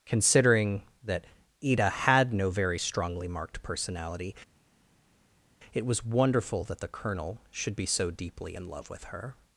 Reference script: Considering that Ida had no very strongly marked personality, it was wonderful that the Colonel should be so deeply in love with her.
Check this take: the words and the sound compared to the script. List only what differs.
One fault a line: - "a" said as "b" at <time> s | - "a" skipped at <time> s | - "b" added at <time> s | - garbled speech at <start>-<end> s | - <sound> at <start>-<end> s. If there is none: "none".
none